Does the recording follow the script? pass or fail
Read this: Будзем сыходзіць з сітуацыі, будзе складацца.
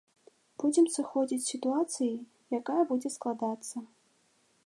fail